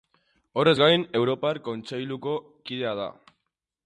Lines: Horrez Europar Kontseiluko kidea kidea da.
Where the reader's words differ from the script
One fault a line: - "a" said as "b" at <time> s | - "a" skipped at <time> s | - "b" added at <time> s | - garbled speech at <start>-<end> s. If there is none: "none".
- "gain" added at 0.8 s
- "kidea" skipped at 2.9 s